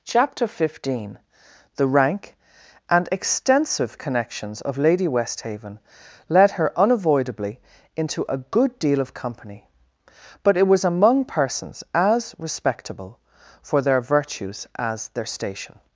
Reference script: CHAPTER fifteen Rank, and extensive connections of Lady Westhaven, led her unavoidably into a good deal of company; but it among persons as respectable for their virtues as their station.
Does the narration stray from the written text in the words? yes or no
yes